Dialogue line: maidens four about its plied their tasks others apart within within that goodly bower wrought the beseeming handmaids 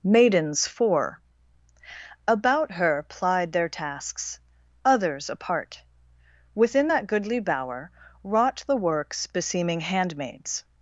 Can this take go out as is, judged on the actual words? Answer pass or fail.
fail